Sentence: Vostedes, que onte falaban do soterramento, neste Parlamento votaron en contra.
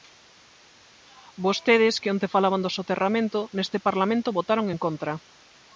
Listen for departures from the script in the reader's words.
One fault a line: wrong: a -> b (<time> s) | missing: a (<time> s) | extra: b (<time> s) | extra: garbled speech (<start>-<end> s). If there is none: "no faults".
no faults